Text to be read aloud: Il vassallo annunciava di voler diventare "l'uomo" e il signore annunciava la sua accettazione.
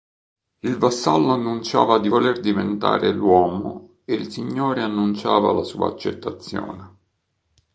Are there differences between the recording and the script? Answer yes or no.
no